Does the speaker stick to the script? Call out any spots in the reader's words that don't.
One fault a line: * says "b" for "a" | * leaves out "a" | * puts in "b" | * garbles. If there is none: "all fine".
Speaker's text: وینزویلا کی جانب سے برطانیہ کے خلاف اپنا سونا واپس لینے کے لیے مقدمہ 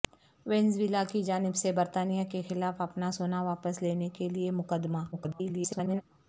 * garbles